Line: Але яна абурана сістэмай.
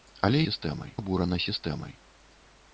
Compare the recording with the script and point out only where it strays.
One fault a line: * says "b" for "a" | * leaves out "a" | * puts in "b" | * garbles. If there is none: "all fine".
* says "сістэмай" for "яна"